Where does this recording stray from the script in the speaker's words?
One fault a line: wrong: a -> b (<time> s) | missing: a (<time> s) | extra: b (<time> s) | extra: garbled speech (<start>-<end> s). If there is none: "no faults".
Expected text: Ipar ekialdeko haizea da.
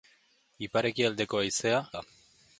no faults